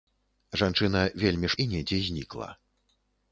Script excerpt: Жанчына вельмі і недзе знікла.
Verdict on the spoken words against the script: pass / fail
pass